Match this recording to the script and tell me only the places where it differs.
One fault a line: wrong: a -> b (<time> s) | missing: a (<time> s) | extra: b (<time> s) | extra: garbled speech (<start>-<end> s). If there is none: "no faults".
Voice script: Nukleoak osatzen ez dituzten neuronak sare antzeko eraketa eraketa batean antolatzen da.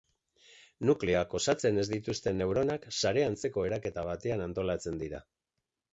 missing: eraketa (4.1 s)
wrong: da -> dira (5.0 s)